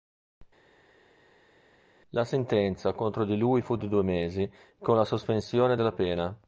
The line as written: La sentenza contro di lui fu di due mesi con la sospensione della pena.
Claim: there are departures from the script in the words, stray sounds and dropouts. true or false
false